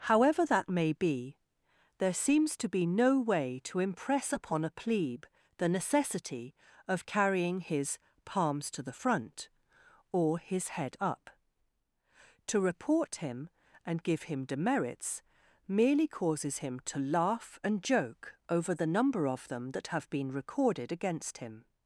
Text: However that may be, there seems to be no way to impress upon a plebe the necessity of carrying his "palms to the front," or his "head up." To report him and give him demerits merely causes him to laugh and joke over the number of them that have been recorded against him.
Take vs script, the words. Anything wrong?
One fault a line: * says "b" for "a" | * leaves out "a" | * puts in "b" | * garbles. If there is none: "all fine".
all fine